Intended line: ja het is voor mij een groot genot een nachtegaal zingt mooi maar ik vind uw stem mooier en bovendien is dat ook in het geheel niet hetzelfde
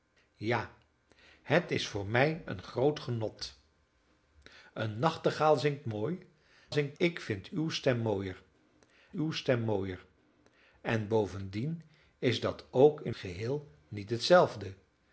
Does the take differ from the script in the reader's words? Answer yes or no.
yes